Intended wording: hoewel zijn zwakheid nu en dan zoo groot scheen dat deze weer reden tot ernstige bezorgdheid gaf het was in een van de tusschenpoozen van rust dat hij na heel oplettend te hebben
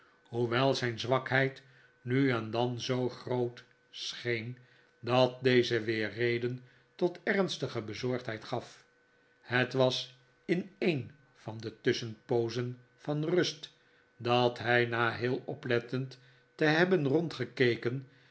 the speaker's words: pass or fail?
pass